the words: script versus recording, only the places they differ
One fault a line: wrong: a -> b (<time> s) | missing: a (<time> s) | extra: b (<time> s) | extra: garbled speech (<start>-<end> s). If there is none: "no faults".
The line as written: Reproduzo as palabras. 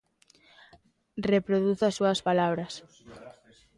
extra: súas (2.0 s)